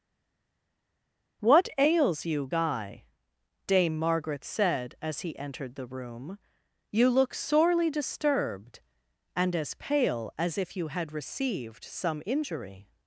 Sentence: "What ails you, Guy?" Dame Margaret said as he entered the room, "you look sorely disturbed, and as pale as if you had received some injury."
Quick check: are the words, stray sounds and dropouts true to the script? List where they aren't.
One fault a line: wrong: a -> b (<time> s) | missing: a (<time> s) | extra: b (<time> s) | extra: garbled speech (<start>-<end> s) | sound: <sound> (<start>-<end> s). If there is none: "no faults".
no faults